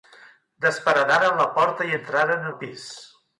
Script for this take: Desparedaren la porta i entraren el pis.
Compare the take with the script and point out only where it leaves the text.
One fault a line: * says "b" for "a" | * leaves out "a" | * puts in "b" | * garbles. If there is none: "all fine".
all fine